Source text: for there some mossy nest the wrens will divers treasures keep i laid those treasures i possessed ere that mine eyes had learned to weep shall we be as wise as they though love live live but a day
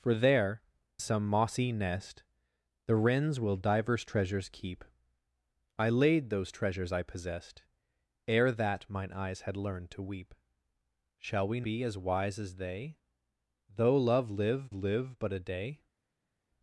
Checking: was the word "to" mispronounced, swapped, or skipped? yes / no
no